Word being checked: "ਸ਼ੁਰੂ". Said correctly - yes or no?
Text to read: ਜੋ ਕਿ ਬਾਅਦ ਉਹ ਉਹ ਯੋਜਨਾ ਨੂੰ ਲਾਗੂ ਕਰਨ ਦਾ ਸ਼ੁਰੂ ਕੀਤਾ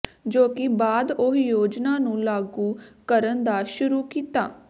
yes